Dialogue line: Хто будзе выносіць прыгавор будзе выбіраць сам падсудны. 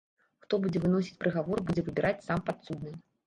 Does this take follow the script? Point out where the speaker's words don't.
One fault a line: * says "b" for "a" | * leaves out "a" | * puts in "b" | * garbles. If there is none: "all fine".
all fine